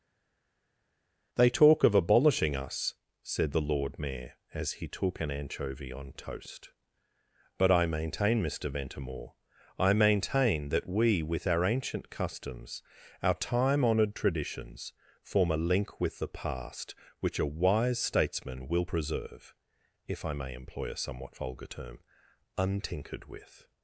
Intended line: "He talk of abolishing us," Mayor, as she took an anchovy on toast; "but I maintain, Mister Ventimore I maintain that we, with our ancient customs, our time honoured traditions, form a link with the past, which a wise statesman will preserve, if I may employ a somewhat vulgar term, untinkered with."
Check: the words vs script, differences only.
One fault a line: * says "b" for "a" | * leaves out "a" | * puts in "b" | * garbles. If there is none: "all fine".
* says "They" for "He"
* puts in "said the Lord"
* says "he" for "she"